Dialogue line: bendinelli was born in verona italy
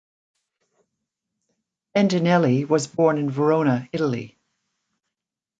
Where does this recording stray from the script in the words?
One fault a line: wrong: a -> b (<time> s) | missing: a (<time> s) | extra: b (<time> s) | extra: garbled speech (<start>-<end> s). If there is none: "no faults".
no faults